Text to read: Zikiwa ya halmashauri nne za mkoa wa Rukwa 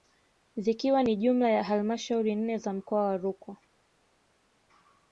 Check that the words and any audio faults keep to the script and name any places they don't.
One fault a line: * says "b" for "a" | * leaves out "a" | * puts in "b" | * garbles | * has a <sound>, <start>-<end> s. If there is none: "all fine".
* puts in "ni jumla"